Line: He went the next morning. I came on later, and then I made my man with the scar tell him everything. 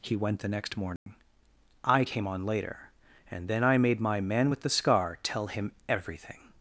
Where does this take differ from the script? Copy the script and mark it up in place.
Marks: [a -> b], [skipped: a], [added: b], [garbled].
He went the next morning. I came on later, and then I made my man with the scar tell him everything.